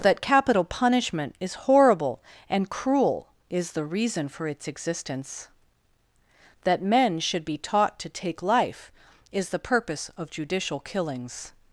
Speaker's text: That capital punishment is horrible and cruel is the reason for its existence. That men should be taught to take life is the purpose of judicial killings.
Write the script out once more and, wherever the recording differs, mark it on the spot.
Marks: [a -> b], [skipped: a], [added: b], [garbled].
That capital punishment is horrible and cruel is the reason for its existence. That men should be taught to take life is the purpose of judicial killings.